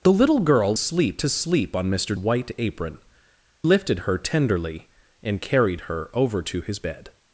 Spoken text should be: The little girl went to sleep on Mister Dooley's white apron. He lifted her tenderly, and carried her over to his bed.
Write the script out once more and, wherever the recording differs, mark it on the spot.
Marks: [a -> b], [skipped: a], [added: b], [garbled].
The little girl [went -> sleep] to sleep on Mister [skipped: Dooley's] white apron. [skipped: He] lifted her tenderly, and carried her over to his bed.